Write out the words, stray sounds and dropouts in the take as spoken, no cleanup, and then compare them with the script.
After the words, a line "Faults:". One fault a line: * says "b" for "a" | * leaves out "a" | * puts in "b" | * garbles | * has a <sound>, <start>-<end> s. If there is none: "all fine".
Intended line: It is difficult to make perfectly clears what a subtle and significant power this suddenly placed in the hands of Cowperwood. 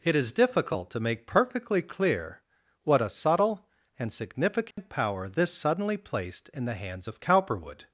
It is difficult to make perfectly clear what a subtle and significant power this suddenly placed in the hands of Cowperwood.
Faults:
* says "clear" for "clears"
* has a dropout, 4.7-4.8 s